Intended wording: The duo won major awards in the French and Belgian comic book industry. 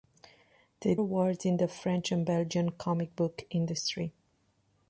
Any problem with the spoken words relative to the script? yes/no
yes